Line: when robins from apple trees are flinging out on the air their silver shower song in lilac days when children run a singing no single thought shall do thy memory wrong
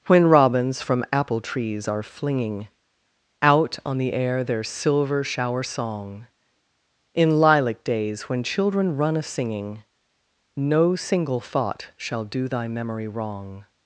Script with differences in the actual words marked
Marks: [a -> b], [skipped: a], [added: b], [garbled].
when robins from apple trees are flinging out on the air their silver shower song in lilac days when children run a singing no single thought shall do thy memory wrong